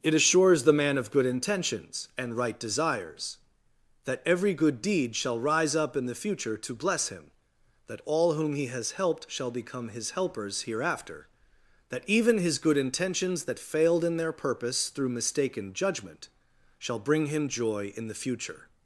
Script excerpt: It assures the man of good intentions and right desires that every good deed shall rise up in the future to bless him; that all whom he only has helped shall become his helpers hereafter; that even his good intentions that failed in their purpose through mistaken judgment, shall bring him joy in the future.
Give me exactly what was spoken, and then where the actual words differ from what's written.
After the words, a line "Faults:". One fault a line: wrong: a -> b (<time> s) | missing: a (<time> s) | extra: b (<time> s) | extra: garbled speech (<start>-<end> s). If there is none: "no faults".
It assures the man of good intentions and right desires that every good deed shall rise up in the future to bless him; that all whom he has helped shall become his helpers hereafter; that even his good intentions that failed in their purpose through mistaken judgment, shall bring him joy in the future.
Faults:
missing: only (8.7 s)